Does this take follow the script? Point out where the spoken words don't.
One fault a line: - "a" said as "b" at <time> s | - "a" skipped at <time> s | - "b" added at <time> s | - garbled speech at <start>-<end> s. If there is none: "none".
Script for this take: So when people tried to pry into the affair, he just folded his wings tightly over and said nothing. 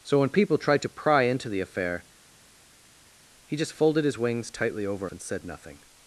none